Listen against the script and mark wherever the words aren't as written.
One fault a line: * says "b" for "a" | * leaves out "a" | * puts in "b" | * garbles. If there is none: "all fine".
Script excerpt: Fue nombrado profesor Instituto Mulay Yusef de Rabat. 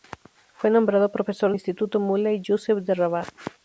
all fine